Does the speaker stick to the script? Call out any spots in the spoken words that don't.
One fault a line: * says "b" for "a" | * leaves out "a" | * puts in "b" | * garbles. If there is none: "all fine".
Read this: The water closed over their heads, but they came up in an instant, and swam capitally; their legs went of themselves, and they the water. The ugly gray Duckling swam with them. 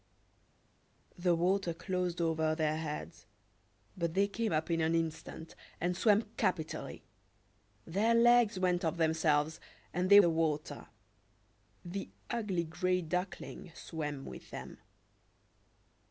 all fine